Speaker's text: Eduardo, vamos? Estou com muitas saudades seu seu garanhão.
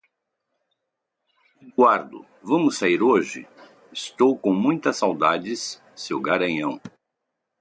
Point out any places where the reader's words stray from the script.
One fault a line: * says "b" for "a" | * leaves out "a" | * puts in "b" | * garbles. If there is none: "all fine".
* puts in "sair hoje"
* leaves out "seu"